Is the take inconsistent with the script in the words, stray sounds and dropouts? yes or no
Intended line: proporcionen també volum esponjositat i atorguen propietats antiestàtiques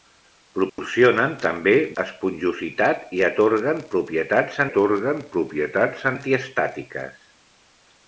yes